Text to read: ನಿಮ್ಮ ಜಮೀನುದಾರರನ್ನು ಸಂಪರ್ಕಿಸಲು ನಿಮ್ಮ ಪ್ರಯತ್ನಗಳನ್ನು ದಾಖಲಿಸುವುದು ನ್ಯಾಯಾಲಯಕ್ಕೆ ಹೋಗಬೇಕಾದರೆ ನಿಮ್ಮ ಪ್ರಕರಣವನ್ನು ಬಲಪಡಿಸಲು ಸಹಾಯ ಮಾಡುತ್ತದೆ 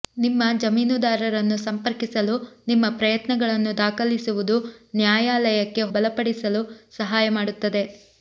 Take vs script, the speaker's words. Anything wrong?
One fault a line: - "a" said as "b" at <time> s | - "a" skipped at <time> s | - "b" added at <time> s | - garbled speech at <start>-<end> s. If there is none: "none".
- "ಹೋಗಬೇಕಾದರೆ ನಿಮ್ಮ ಪ್ರಕರಣವನ್ನು" skipped at 5.8 s